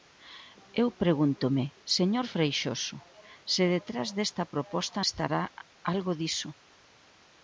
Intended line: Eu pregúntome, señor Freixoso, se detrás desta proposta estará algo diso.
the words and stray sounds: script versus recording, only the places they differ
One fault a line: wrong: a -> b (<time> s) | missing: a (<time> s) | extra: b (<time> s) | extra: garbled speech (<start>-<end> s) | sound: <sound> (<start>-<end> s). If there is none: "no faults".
no faults